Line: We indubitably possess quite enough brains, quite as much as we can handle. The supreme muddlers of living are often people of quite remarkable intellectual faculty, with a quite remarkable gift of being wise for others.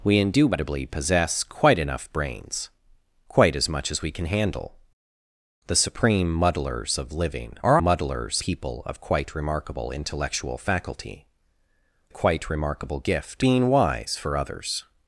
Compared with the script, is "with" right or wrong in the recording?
wrong